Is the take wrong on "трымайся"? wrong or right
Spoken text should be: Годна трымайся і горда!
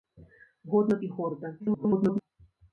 wrong